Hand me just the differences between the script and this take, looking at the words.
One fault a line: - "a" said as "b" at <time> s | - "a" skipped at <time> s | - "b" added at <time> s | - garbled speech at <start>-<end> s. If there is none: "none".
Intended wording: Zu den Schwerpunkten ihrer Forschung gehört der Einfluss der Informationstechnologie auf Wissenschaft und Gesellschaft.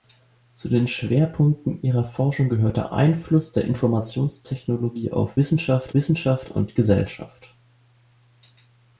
- "Wissenschaft" added at 5.9 s